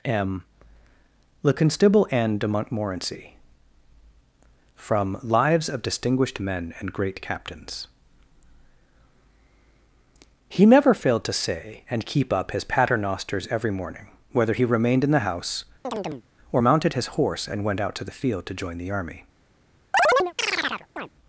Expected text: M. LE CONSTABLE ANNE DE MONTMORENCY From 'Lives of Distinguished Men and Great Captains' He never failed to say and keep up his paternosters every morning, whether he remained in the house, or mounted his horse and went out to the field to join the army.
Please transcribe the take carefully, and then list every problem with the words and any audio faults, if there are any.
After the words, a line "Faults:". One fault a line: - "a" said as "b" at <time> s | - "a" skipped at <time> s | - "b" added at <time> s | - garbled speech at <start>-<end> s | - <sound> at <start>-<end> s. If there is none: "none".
M. LE CONSTABLE ANNE DE MONTMORENCY From 'Lives of Distinguished Men and Great Captains' He never failed to say and keep up his paternosters every morning, whether he remained in the house, or mounted his horse and went out to the field to join the army.
Faults:
- chirp at 15.8-16.2 s
- chirp at 19.9-21.1 s